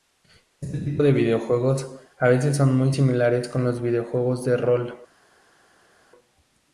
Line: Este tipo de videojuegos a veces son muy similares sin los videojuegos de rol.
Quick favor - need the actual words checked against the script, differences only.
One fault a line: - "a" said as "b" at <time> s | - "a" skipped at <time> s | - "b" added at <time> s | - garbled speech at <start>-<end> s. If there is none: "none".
- "sin" said as "con" at 3.5 s